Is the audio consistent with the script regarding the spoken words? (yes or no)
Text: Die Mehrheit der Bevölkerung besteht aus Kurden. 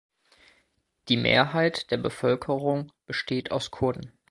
yes